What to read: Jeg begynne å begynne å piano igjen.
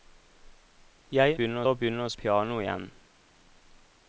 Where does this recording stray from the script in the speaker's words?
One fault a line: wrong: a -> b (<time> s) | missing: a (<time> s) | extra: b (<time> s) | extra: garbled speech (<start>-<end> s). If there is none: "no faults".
no faults